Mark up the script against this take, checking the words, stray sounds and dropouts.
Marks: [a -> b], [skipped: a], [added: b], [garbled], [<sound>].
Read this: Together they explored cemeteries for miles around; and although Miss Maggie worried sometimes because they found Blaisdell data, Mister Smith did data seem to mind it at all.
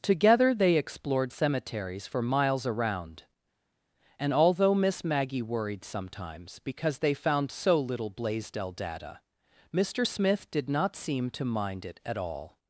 Together they explored cemeteries for miles around; and although Miss Maggie worried sometimes because they found [added: so little] Blaisdell data, Mister Smith did [data -> not] seem to mind it at all.